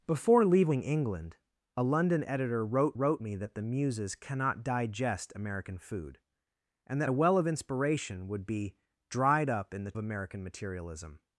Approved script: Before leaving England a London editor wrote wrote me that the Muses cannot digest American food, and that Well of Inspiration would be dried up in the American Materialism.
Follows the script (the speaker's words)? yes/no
yes